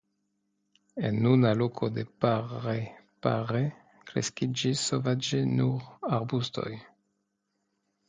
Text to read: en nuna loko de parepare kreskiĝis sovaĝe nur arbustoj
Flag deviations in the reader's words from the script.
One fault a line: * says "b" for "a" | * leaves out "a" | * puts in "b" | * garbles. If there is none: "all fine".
all fine